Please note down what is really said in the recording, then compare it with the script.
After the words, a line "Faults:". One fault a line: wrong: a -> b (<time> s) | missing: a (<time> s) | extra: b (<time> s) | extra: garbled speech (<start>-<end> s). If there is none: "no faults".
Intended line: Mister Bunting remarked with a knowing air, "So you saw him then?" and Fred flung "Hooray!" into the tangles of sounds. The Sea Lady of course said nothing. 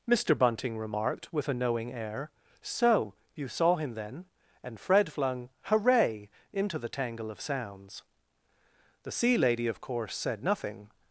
Mister Bunting remarked with a knowing air, "So you saw him then?" and Fred flung "Hooray!" into the tangle of sounds. The Sea Lady of course said nothing.
Faults:
wrong: tangles -> tangle (6.9 s)